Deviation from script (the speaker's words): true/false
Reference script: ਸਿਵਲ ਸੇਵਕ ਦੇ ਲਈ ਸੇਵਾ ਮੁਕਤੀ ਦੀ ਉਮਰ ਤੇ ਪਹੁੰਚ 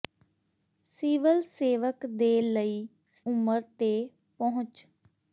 true